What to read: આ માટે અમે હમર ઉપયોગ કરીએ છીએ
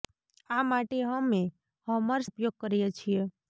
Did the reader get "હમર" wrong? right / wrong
right